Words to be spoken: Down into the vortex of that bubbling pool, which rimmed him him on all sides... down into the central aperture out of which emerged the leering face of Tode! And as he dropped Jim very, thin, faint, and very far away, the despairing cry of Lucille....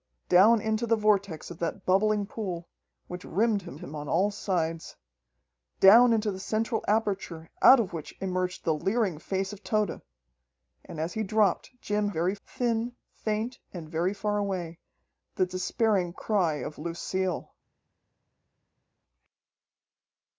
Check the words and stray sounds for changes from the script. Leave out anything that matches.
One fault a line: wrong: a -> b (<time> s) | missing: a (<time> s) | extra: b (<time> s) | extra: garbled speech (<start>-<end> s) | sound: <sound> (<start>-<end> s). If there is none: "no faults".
no faults